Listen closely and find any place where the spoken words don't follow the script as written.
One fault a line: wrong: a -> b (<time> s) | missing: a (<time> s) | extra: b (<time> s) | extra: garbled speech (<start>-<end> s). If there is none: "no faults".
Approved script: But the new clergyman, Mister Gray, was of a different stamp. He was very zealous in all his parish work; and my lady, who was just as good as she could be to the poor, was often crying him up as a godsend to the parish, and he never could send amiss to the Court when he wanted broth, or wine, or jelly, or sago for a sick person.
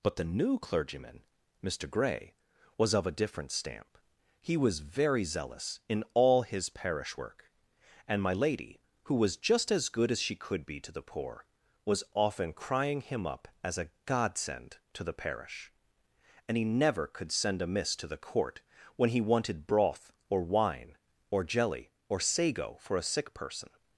no faults